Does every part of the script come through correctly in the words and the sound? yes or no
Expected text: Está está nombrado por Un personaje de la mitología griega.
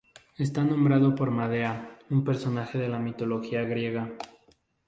no